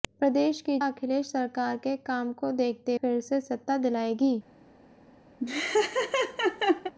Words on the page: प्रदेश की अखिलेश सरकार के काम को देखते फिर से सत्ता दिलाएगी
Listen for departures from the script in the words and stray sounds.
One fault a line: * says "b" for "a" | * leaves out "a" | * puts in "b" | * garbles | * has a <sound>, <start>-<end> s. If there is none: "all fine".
* has a laugh, 5.4-6.9 s